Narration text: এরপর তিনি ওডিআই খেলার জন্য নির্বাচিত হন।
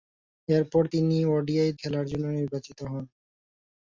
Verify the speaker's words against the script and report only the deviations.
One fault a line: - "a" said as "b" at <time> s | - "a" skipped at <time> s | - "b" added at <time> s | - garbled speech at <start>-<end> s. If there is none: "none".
none